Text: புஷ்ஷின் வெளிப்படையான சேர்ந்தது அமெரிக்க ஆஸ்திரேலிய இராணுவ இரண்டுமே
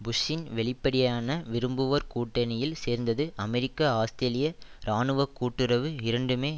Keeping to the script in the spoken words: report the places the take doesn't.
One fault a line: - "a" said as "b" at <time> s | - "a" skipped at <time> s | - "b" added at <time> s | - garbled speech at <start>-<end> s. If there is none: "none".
- "விரும்புவோர் கூட்டணியில்" added at 1.5 s
- "கூட்டுறவு" added at 5.4 s